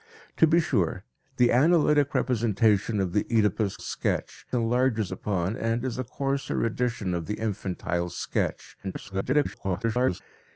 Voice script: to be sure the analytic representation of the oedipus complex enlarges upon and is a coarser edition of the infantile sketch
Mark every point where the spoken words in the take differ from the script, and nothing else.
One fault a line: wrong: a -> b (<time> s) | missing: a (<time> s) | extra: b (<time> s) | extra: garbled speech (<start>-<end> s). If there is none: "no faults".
wrong: complex -> sketch (3.8 s)
extra: garbled speech (8.8-10.2 s)